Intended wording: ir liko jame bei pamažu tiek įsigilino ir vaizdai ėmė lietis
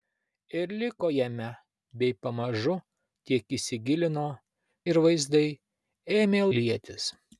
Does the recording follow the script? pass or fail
pass